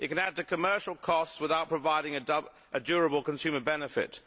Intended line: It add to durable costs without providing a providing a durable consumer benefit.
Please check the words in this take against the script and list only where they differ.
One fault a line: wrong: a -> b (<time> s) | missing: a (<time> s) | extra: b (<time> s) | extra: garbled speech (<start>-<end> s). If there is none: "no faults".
extra: can (0.1 s)
wrong: durable -> commercial (0.4 s)
missing: providing a (2.8 s)